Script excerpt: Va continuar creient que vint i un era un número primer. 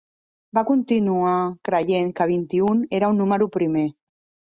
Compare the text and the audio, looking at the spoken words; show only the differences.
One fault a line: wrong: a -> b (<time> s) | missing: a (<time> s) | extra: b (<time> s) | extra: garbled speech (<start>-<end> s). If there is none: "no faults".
no faults